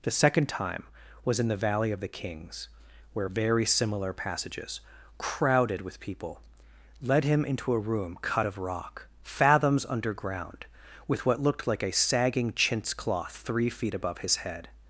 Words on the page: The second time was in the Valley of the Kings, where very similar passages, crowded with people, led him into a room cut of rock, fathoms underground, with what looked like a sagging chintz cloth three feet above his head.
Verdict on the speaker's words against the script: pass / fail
pass